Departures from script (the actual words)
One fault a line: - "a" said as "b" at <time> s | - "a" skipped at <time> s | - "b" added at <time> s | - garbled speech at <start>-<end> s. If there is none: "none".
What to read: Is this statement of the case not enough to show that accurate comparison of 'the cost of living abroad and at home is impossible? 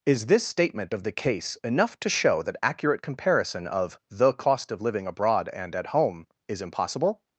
- "not" skipped at 1.6 s